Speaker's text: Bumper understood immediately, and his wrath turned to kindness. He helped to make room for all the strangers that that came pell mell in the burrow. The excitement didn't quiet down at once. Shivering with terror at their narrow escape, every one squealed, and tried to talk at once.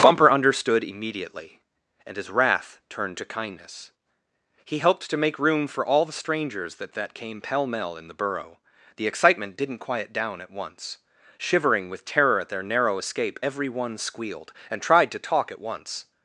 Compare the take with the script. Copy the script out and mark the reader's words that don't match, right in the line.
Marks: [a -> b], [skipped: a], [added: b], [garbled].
Bumper understood immediately, and his wrath turned to kindness. He helped to make room for all the strangers that that came pell mell in the burrow. The excitement didn't quiet down at once. Shivering with terror at their narrow escape, every one squealed, and tried to talk at once.